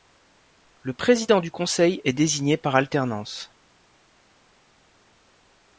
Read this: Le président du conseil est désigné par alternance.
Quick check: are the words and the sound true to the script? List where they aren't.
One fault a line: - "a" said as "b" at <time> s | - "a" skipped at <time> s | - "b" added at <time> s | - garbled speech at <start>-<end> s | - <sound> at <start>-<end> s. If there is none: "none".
none